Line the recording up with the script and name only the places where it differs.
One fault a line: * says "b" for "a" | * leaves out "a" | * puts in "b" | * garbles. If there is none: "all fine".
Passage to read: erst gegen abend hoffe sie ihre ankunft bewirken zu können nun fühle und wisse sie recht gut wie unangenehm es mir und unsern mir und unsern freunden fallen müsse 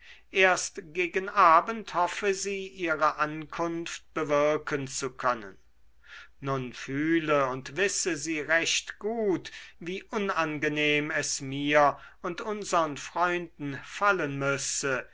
* leaves out "mir und unsern"